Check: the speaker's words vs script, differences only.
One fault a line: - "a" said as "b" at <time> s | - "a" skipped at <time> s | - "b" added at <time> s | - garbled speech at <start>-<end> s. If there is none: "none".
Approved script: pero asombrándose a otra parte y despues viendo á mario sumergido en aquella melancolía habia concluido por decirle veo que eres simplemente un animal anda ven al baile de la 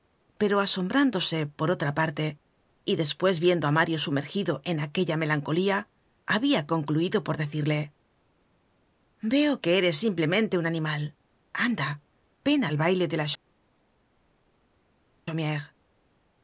- "a" said as "por" at 1.4 s